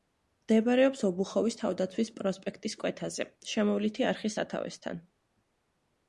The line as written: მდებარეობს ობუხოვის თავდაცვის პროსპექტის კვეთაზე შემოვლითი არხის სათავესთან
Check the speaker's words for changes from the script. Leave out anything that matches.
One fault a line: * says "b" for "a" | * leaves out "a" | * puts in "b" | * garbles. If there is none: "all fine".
all fine